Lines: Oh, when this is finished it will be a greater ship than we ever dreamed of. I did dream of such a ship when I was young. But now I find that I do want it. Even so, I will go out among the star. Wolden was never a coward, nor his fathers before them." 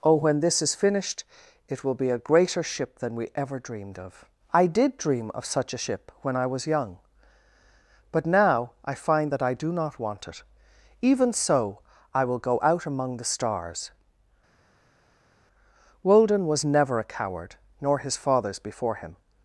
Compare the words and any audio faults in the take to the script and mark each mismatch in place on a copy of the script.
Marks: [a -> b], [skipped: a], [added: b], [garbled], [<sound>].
Oh, when this is finished it will be a greater ship than we ever dreamed of. I did dream of such a ship when I was young. But now I find that I do [added: not] want it. Even so, I will go out among the [star. -> stars] Wolden was never a coward, nor his fathers before [them." -> him]